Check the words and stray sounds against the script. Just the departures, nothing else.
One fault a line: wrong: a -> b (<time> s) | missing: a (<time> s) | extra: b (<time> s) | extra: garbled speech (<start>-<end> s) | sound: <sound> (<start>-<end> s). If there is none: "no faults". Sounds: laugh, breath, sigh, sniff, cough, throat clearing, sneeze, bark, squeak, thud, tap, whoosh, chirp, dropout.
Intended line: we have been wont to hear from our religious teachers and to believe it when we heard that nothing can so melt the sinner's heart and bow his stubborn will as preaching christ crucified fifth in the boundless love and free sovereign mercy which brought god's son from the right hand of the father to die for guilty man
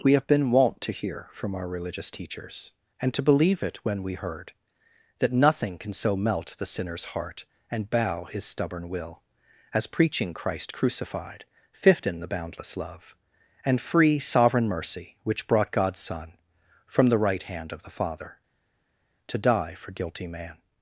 no faults